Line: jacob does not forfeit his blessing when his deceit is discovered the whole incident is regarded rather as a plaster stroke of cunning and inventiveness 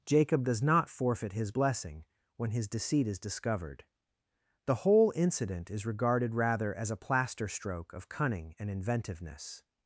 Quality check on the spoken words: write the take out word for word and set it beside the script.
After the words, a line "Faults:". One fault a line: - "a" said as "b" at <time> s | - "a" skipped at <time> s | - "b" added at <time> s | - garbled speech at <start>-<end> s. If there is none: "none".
jacob does not forfeit his blessing when his deceit is discovered the whole incident is regarded rather as a plaster stroke of cunning and inventiveness
Faults:
none